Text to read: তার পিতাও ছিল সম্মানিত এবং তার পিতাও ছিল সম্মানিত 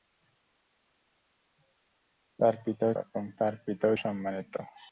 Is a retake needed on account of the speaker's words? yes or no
yes